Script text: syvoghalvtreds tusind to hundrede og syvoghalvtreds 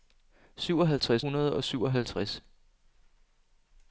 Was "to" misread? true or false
true